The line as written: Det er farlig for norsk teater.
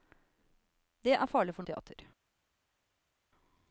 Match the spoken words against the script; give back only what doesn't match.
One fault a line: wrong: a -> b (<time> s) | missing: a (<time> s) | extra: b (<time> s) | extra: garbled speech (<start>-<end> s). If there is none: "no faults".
missing: norsk (1.6 s)